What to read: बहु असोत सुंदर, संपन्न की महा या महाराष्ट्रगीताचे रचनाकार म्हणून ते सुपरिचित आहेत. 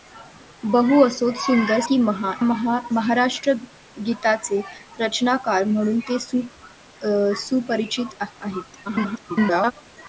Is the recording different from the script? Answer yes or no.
yes